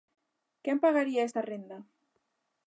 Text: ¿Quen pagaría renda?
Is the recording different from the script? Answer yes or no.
yes